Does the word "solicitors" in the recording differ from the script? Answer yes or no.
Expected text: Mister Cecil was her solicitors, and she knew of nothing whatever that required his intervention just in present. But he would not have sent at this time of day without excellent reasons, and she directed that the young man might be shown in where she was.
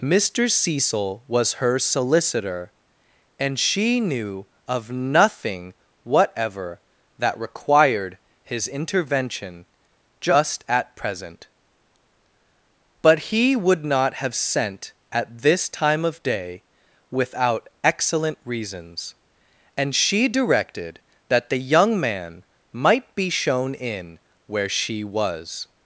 yes